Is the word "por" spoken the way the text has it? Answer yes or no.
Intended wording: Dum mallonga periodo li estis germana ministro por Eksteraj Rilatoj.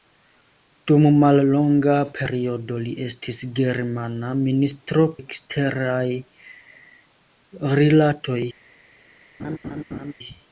no